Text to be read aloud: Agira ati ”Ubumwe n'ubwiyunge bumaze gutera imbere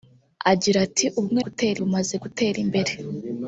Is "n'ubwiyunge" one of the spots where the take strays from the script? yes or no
yes